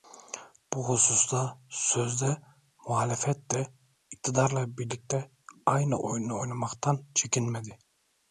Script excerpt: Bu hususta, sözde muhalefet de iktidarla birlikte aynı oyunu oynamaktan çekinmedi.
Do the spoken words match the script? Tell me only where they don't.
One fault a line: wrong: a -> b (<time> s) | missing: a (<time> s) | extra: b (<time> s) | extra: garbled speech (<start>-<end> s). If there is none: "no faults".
no faults